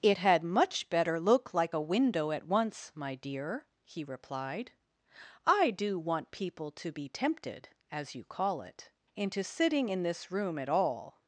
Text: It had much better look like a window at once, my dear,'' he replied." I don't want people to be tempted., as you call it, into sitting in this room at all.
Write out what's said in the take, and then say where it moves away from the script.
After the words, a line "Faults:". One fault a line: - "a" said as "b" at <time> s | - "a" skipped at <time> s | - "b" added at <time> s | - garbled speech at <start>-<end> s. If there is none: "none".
It had much better look like a window at once, my dear,'' he replied." I do want people to be tempted., as you call it, into sitting in this room at all.
Faults:
- "don't" said as "do" at 5.7 s